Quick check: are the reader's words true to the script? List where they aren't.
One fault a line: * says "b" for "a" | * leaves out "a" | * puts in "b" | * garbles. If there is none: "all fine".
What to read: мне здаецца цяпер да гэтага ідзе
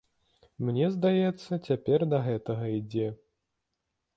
all fine